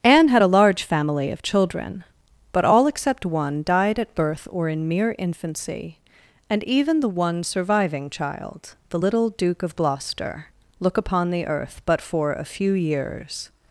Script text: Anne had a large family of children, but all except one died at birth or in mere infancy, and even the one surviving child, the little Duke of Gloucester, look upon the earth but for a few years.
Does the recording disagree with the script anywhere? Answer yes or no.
no